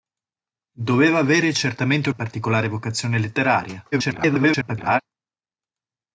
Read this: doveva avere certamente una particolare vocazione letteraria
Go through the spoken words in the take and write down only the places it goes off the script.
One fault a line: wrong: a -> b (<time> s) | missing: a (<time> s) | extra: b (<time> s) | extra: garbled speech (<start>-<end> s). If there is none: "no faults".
missing: una (2.1 s)
extra: garbled speech (3.9-5.0 s)